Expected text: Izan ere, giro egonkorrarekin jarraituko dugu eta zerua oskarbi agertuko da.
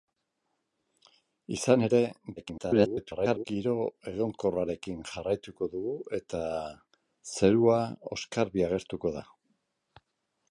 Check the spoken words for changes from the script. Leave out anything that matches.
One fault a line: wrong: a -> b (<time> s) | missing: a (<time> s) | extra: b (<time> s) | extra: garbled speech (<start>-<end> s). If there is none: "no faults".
extra: garbled speech (2.4-3.4 s)